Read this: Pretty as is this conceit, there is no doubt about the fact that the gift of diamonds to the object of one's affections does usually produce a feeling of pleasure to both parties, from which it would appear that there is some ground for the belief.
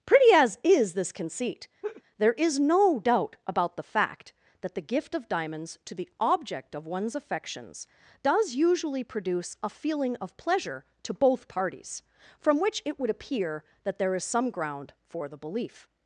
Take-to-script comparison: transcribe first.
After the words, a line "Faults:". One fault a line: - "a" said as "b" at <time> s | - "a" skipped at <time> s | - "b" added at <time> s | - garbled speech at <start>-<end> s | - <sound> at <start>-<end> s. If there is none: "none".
Pretty as is this conceit, there is no doubt about the fact that the gift of diamonds to the object of one's affections does usually produce a feeling of pleasure to both parties, from which it would appear that there is some ground for the belief.
Faults:
- laugh at 1.8-2.0 s